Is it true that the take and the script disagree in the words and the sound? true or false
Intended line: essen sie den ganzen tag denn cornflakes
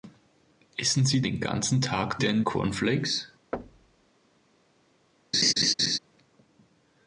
true